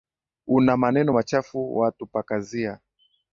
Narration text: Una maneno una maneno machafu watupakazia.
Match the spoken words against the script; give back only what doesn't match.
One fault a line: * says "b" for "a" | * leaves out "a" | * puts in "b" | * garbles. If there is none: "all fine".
* leaves out "una maneno"